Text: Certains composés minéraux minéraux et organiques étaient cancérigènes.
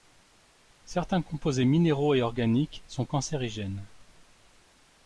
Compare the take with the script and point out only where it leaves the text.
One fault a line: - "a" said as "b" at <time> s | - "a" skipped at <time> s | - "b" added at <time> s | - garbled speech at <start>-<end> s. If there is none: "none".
- "minéraux" skipped at 2.1 s
- "étaient" said as "sont" at 2.9 s